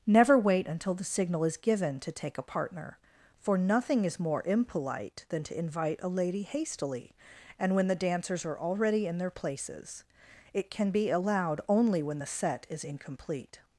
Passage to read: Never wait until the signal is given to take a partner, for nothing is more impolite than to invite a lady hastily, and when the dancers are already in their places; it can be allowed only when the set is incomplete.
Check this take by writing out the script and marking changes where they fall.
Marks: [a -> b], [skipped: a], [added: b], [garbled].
Never wait until the signal is given to take a partner, for nothing is more impolite than to invite a lady hastily, and when the dancers are already in their places; it can be allowed only when the set is incomplete.